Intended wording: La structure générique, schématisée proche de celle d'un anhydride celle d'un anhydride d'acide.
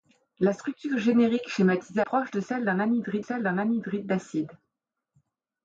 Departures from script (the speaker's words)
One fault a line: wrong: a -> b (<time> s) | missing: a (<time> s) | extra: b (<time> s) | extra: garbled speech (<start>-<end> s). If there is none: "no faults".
no faults